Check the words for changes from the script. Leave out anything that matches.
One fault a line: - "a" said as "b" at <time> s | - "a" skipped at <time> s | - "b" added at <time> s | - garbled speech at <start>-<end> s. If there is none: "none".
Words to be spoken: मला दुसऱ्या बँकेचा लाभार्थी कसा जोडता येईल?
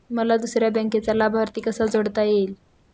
none